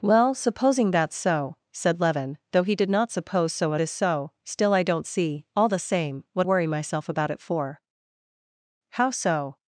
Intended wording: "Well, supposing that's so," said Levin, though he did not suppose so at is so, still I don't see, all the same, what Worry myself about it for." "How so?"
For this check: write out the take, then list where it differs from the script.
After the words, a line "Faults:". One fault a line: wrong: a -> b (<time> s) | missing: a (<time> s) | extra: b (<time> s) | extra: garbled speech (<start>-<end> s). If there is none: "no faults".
"Well, supposing that's so," said Levin, though he did not suppose so at is so, still I don't see, all the same, what Worry myself about it for." "How so?"
Faults:
no faults